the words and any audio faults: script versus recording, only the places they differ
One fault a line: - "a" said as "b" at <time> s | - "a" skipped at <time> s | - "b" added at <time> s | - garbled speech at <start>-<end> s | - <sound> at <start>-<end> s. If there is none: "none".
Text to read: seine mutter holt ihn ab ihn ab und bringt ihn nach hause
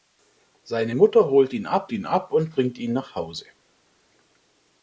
none